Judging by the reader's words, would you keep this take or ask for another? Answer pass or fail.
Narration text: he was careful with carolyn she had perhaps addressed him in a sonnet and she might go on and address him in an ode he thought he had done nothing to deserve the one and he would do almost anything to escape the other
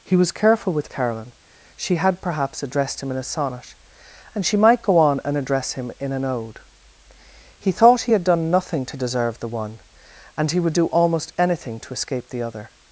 pass